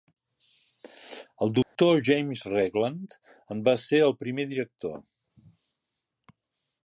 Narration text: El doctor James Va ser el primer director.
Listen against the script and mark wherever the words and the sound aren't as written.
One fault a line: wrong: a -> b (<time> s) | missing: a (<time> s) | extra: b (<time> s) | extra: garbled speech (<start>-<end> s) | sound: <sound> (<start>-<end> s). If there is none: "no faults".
sound: dropout (1.6-1.8 s)
extra: Regland en (2.5 s)